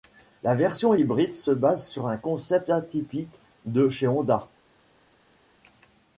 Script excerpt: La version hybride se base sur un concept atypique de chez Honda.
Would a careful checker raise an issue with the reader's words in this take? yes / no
no